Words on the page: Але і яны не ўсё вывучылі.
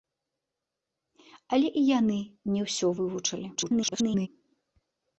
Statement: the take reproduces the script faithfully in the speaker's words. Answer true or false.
false